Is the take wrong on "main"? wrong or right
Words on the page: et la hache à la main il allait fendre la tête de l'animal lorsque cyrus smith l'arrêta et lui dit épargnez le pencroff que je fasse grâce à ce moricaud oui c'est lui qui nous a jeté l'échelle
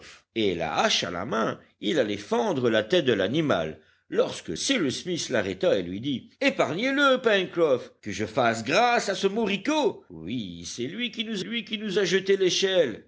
right